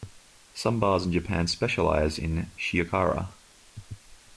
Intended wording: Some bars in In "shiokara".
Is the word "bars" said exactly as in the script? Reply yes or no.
yes